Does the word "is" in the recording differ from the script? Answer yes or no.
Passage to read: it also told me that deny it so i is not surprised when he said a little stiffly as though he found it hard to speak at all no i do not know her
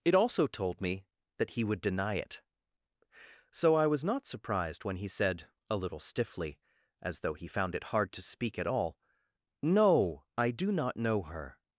yes